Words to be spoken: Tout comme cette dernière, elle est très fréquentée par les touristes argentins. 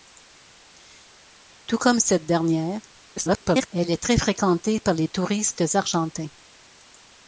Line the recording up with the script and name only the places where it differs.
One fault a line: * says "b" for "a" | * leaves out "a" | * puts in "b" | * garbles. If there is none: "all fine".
* garbles